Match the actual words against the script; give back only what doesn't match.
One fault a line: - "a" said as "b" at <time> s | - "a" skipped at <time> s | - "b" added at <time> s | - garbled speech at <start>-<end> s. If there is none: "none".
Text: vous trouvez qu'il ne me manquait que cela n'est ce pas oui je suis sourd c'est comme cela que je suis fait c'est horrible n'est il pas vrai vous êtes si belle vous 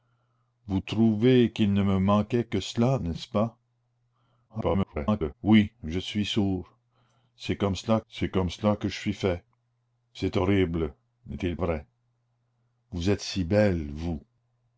- garbled speech at 4.5-5.3 s
- "c'est comme cela" added at 8.1 s
- "pas" skipped at 11.6 s